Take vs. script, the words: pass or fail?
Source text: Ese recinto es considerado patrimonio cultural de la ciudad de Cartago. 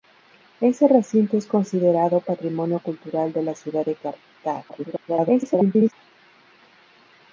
fail